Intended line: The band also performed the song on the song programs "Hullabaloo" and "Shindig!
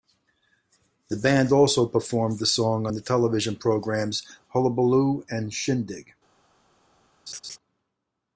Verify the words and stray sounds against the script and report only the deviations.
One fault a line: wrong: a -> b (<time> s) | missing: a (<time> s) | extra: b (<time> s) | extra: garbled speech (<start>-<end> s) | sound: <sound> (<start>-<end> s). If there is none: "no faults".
wrong: song -> television (3.0 s)
sound: laugh (7.3-7.6 s)